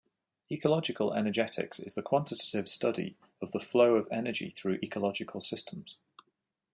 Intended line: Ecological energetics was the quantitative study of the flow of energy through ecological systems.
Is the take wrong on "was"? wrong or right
wrong